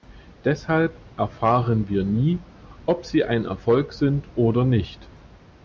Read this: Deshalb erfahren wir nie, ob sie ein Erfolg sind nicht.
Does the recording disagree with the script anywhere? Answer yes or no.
yes